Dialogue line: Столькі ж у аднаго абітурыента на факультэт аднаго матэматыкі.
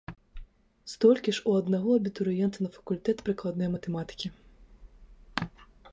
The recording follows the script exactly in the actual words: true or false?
false